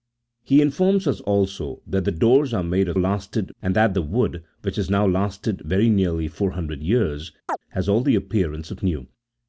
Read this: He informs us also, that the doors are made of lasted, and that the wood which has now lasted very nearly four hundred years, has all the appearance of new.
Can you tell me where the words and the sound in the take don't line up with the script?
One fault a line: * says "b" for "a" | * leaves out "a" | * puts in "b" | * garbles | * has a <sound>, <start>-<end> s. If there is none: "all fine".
* has a chirp, 7.5-7.6 s